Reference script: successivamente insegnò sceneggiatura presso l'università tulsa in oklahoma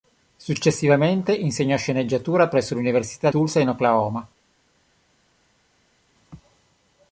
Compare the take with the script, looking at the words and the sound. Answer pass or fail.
pass